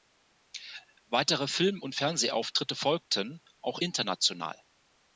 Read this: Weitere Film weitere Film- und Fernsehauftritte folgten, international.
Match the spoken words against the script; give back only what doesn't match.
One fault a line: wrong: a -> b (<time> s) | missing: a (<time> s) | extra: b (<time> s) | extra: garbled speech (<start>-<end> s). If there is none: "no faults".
missing: weitere Film (1.8 s)
extra: auch (3.6 s)